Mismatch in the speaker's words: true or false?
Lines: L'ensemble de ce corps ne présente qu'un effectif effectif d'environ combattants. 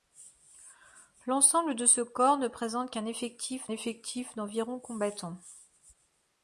false